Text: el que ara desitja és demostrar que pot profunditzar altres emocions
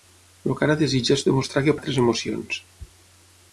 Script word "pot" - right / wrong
wrong